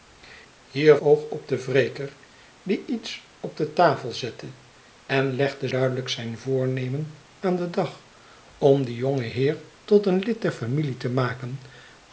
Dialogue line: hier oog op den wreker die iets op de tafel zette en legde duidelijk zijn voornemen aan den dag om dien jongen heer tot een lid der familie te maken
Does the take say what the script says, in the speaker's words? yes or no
yes